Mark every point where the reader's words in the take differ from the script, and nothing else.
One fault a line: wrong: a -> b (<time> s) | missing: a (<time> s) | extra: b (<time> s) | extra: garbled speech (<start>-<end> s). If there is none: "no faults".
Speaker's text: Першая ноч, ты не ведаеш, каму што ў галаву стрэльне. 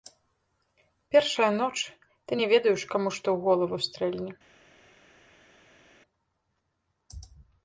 no faults